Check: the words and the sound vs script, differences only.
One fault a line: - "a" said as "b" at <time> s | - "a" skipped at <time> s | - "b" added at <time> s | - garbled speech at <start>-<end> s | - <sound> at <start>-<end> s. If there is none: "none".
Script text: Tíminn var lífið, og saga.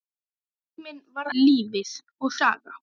none